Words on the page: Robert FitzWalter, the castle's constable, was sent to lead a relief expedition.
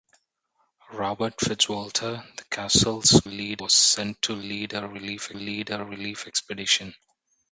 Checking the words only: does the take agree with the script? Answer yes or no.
no